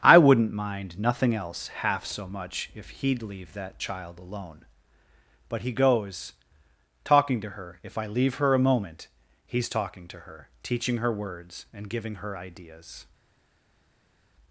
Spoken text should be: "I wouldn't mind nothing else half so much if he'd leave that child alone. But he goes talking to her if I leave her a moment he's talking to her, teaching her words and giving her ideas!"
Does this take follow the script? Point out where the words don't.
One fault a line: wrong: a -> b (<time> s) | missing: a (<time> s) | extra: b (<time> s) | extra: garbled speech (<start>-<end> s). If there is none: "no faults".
no faults